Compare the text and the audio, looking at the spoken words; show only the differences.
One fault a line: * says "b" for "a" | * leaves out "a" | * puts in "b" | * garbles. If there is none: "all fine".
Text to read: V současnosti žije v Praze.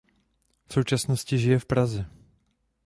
all fine